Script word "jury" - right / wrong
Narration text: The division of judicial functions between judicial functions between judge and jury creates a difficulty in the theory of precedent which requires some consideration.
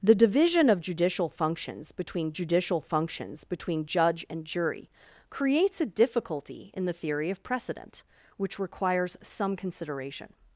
right